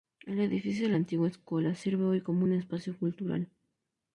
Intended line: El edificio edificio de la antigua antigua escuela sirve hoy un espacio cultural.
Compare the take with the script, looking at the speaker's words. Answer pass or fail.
fail